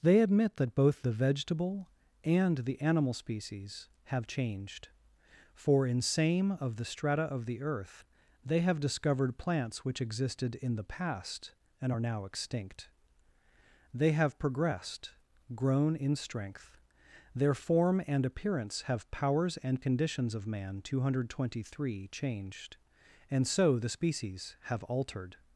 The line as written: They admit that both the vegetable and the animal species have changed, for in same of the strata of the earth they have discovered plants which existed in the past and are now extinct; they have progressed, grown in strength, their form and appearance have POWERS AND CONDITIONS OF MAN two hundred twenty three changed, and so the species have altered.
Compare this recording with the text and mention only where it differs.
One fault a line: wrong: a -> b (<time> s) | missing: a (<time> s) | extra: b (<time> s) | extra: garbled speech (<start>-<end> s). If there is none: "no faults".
no faults